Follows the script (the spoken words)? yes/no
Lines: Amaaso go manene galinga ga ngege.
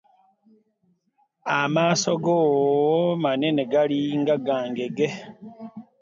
yes